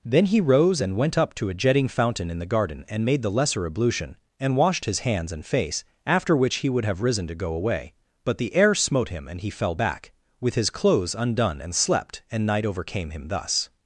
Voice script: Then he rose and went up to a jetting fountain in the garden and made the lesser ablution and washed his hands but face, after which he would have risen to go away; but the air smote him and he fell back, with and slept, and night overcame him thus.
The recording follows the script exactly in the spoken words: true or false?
false